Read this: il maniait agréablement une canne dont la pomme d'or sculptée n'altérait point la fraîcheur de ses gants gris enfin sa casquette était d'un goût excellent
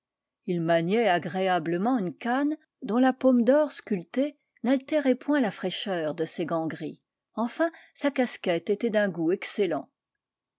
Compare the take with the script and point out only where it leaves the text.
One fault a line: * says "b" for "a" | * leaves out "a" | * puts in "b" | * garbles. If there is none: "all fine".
all fine